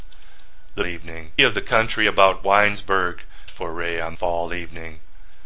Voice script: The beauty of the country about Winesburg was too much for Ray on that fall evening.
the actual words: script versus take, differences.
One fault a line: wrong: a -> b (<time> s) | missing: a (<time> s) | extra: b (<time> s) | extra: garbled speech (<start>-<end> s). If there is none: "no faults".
wrong: beauty -> evening (0.9 s)
missing: was too much (3.2 s)
missing: that (4.1 s)